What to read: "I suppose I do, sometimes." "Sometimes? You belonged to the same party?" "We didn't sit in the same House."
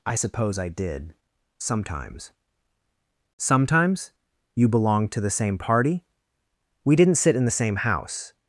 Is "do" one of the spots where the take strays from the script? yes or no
yes